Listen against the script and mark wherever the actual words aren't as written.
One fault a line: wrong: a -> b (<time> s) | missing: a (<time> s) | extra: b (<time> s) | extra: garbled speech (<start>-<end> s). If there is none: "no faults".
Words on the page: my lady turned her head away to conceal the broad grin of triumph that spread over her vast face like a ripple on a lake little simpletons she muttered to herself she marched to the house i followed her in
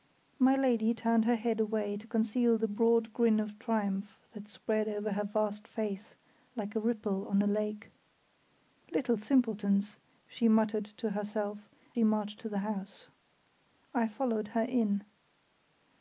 no faults